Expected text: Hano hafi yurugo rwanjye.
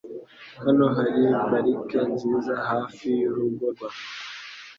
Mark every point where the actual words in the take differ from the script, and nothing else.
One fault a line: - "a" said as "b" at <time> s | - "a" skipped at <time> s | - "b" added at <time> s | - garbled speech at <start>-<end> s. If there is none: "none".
- "hari parike nziza" added at 0.9 s